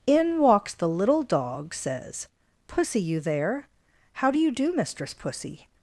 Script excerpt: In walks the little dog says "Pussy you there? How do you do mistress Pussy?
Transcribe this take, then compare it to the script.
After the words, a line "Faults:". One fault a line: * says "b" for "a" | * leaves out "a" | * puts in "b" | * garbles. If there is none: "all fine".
In walks the little dog says "Pussy you there? How do you do mistress Pussy?
Faults:
all fine